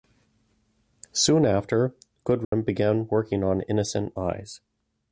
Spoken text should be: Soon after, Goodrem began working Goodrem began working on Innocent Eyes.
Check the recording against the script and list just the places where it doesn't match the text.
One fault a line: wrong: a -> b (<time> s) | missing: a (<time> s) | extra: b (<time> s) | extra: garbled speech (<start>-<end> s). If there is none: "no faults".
missing: Goodrem began working (3.4 s)